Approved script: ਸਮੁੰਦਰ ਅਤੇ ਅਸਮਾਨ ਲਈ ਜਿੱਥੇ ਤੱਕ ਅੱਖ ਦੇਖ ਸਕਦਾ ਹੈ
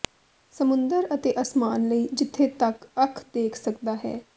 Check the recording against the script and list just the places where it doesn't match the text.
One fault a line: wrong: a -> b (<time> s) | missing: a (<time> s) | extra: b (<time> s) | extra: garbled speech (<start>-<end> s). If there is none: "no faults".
no faults